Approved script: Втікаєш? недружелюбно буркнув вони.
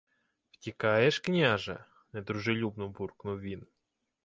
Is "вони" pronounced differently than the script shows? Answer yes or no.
yes